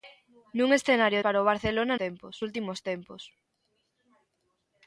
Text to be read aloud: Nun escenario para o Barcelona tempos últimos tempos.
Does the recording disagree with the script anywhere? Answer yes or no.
no